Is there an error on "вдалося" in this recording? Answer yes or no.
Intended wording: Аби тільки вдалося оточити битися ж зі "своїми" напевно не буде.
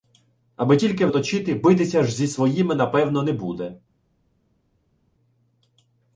yes